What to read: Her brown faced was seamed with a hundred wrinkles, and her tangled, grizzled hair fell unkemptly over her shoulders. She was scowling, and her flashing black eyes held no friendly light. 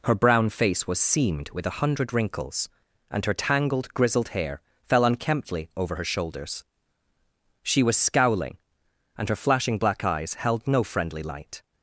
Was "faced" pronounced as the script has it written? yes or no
no